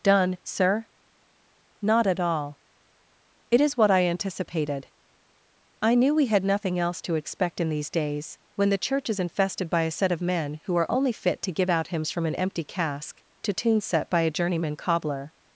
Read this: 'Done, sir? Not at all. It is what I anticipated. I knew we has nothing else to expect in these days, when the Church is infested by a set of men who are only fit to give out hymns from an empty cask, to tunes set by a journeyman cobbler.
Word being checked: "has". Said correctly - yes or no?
no